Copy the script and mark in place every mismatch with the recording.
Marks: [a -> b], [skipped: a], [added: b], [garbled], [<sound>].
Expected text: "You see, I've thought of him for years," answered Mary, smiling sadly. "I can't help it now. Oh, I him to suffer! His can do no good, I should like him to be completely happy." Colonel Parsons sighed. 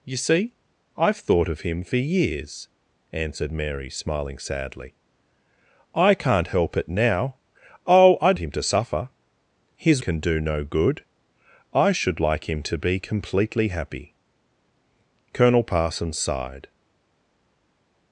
"You see, I've thought of him for years," answered Mary, smiling sadly. "I can't help it now. Oh, I him to suffer! His can do no good, I should like him to be completely happy." Colonel Parsons sighed.